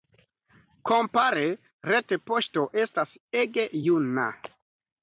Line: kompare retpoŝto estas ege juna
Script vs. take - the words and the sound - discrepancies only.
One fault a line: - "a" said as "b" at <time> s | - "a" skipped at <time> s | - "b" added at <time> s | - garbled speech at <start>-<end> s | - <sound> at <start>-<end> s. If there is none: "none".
none